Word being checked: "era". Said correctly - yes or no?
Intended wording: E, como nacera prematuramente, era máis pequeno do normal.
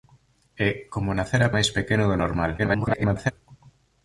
no